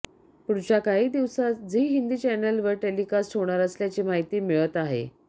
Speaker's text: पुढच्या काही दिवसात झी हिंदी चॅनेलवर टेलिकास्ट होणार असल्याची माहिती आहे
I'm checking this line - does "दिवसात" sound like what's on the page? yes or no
yes